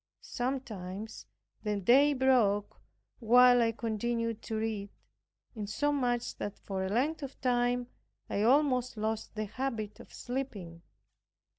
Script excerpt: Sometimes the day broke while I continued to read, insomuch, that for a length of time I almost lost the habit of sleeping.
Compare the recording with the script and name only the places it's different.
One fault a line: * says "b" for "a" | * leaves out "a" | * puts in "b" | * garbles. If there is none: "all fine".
all fine